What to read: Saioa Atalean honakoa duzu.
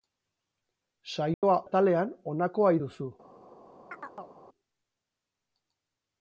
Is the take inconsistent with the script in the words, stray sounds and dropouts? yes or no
yes